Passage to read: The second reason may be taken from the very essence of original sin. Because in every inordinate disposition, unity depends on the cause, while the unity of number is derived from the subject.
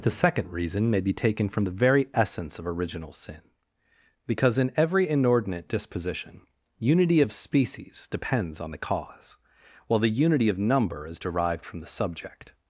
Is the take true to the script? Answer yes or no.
no